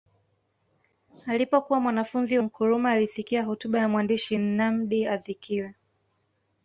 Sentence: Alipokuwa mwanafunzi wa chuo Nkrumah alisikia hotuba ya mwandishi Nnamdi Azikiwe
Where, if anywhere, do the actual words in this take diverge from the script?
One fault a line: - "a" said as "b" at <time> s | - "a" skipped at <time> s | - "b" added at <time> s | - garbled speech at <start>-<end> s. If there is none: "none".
- "wa chuo" skipped at 2.4 s